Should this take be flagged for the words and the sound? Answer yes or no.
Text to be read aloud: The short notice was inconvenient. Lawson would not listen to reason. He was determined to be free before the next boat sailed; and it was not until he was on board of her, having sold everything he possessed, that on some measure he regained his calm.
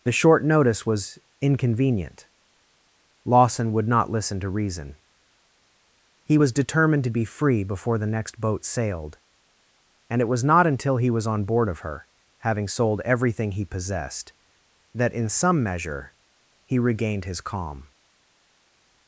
yes